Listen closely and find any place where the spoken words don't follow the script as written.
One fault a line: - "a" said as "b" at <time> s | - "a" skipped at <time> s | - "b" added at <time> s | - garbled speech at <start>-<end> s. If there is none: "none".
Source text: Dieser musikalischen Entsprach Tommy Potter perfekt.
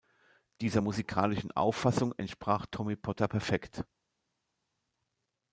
- "Auffassung" added at 1.5 s